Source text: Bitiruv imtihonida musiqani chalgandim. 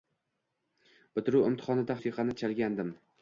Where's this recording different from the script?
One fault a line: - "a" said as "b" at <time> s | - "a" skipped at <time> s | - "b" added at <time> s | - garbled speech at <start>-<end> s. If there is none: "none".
none